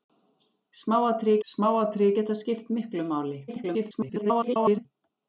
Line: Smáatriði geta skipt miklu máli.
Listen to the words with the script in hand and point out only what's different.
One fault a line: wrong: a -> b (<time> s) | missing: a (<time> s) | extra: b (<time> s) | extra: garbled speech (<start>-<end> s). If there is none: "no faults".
extra: smáatriði (1.5 s)
extra: garbled speech (3.5-4.9 s)